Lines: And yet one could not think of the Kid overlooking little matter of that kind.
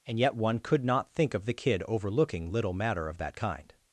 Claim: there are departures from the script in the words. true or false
false